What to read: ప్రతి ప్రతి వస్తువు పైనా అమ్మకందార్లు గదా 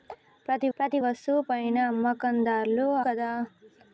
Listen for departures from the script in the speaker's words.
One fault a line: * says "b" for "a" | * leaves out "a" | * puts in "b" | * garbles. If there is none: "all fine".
all fine